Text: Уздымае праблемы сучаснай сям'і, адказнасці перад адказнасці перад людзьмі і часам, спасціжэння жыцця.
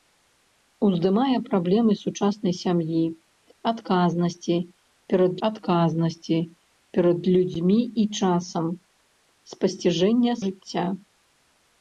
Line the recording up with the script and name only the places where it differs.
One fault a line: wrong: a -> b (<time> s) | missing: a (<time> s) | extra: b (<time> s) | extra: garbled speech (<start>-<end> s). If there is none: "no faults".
no faults